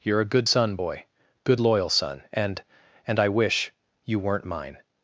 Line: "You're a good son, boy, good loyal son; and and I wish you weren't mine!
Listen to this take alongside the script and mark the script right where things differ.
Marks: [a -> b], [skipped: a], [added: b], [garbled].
"You're a good son, boy, good loyal son; and and I wish you weren't mine!